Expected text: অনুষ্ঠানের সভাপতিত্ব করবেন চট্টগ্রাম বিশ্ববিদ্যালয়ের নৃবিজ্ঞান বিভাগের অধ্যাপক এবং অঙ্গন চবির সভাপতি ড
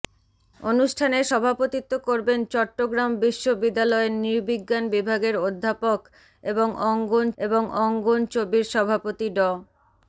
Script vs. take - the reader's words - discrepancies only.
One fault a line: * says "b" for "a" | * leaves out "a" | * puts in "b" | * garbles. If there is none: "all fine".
* puts in "এবং অঙ্গন"